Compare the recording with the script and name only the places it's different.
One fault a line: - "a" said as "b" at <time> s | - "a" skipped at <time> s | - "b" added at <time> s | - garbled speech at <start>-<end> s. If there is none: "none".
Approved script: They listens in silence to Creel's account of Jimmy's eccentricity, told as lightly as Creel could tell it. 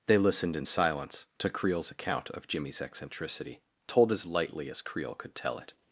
- "listens" said as "listened" at 0.2 s